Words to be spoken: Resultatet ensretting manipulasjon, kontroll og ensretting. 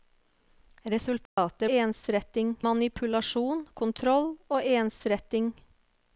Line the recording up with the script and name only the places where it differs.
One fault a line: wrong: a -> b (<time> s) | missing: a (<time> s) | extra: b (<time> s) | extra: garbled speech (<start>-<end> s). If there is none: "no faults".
no faults